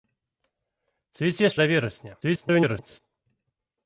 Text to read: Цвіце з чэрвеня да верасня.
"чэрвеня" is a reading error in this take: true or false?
true